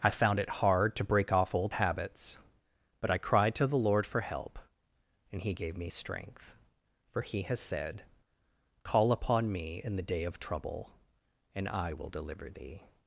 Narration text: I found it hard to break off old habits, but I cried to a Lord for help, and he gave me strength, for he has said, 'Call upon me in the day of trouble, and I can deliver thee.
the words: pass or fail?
fail